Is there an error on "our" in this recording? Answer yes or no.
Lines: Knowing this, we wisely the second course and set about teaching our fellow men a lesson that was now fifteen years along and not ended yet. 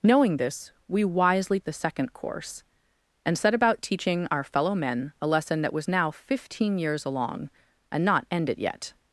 no